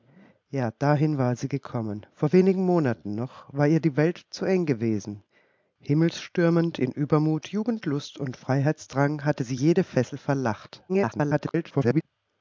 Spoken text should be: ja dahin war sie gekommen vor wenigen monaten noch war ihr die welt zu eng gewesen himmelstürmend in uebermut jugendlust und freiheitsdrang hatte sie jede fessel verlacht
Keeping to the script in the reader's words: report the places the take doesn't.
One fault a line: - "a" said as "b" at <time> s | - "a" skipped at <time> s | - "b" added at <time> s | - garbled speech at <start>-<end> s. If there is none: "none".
- garbled speech at 10.9-12.0 s